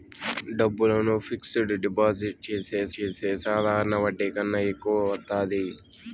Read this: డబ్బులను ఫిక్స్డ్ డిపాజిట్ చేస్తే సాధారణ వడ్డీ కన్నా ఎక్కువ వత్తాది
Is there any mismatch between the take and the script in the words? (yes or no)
yes